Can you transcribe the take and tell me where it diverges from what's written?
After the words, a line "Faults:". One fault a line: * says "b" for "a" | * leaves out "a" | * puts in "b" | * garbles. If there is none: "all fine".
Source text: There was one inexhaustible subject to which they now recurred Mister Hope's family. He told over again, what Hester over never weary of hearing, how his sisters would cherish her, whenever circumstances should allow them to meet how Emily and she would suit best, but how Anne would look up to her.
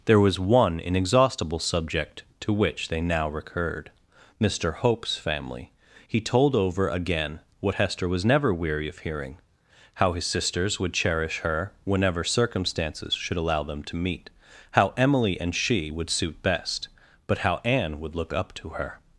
There was one inexhaustible subject to which they now recurred Mister Hope's family. He told over again, what Hester was never weary of hearing, how his sisters would cherish her, whenever circumstances should allow them to meet how Emily and she would suit best, but how Anne would look up to her.
Faults:
* says "was" for "over"